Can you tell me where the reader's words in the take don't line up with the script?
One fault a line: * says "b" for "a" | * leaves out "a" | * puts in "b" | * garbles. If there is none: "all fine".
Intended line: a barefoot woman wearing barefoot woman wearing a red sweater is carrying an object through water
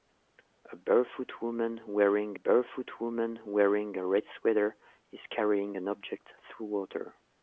all fine